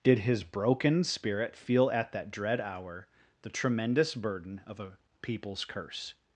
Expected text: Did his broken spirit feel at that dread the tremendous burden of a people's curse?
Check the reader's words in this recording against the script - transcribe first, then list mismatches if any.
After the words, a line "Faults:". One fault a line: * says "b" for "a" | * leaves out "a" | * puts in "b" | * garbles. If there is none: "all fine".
Did his broken spirit feel at that dread hour the tremendous burden of a people's curse?
Faults:
* puts in "hour"